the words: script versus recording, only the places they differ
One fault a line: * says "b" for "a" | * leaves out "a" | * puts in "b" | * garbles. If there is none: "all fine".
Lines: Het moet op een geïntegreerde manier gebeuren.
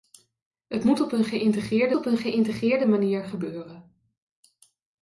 * puts in "op een geïntegreerde"